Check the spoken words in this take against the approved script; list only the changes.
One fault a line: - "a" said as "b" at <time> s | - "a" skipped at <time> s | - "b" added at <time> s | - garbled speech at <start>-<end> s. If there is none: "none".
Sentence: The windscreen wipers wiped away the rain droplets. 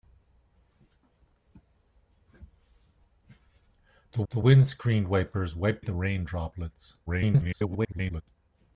- "the" added at 4.3 s
- "away" skipped at 5.9 s
- garbled speech at 7.1-8.2 s